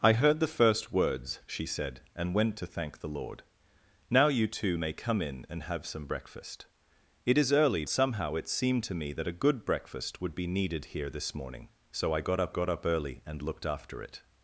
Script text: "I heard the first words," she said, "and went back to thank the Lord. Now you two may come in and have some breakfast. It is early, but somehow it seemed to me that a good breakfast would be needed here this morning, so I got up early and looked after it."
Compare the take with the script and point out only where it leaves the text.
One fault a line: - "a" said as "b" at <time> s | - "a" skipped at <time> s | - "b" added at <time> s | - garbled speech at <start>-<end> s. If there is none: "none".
- "back" skipped at 2.6 s
- "but" skipped at 7.8 s
- "got up" added at 12.5 s